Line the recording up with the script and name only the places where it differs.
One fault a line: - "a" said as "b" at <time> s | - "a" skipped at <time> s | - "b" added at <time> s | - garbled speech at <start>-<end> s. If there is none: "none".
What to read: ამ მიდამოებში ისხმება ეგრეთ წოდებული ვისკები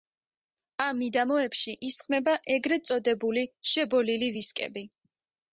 - "შებოლილი" added at 3.7 s